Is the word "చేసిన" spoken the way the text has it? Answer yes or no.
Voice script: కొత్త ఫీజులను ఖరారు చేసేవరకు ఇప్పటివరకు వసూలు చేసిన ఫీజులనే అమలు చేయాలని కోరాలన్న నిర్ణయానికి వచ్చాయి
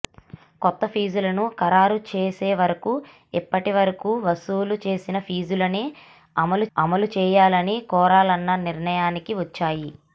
yes